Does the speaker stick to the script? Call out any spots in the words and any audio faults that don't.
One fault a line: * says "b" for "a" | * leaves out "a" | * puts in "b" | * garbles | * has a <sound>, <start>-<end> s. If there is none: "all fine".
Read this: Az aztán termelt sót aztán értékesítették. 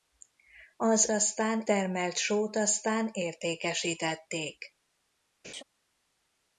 * has a laugh, 5.4-5.6 s